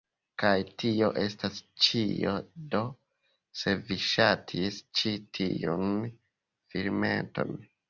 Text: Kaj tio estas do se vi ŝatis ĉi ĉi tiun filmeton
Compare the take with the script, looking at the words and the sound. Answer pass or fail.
fail